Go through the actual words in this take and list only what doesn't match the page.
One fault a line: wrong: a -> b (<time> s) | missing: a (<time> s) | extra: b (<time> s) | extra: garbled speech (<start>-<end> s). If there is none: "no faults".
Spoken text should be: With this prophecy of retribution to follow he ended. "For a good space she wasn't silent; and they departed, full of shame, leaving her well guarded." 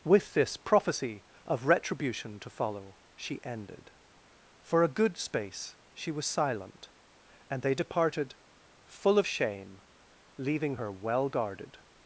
wrong: he -> she (3.1 s)
wrong: wasn't -> was (6.1 s)